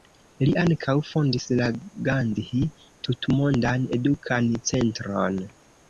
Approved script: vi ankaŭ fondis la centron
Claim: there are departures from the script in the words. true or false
true